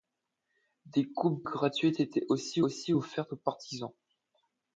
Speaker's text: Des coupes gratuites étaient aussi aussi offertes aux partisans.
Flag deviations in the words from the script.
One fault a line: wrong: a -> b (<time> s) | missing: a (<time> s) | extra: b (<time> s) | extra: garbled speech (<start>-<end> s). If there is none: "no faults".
no faults